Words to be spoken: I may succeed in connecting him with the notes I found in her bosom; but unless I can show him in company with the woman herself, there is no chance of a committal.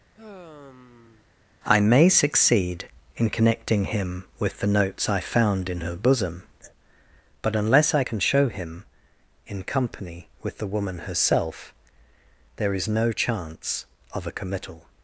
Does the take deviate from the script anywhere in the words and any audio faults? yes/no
yes